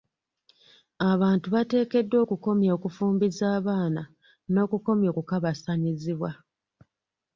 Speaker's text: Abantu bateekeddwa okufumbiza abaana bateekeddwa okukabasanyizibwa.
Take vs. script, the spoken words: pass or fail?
fail